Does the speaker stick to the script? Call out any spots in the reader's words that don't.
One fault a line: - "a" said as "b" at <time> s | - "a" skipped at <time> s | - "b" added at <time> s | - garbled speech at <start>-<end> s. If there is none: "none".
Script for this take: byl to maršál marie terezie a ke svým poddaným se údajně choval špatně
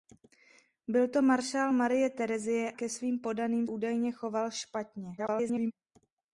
- "a" skipped at 2.7 s
- "se" skipped at 3.7 s
- garbled speech at 5.2-5.7 s